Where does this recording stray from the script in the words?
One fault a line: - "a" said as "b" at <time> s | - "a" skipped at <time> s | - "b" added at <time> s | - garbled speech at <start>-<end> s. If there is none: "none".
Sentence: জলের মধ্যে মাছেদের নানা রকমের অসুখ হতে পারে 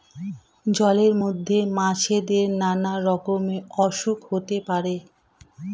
none